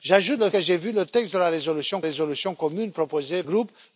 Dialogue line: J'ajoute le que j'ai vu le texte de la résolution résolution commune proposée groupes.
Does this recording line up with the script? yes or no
yes